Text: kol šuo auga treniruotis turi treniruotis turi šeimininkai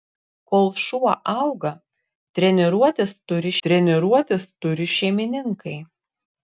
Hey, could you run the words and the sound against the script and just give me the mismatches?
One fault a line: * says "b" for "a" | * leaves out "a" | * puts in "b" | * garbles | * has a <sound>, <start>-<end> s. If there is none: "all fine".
all fine